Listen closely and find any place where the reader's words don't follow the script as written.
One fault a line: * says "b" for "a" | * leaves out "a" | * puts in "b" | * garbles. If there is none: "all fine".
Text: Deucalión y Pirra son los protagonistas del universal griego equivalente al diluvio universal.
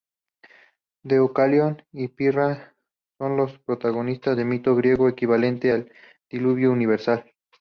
* says "mito" for "universal"